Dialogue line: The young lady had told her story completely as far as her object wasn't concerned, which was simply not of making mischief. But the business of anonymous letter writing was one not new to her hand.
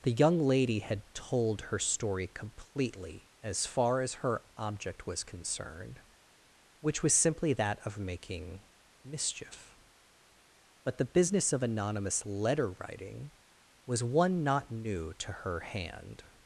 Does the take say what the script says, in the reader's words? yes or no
no